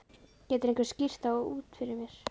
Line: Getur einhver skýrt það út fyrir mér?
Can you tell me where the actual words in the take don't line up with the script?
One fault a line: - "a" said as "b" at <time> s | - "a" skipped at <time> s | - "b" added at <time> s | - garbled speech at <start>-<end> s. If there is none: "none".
none